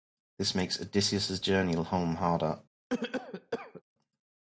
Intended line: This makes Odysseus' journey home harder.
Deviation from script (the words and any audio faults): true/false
true